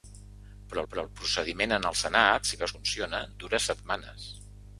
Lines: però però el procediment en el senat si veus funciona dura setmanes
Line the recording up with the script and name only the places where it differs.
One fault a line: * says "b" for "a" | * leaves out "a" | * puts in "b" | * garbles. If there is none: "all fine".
all fine